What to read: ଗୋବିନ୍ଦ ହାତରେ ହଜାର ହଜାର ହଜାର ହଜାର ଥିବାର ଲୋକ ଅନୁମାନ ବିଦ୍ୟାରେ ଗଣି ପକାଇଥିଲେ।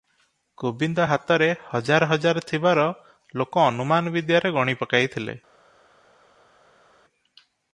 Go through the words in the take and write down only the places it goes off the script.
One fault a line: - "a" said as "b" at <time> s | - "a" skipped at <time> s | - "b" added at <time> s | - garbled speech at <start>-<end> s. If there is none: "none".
- "ହଜାର ହଜାର" skipped at 2.4 s